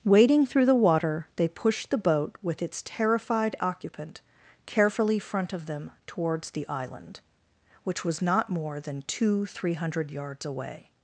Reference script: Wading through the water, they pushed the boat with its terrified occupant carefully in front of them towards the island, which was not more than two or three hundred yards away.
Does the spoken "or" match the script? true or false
false